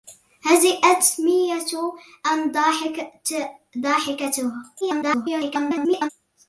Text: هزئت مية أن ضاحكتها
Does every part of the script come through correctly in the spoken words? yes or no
no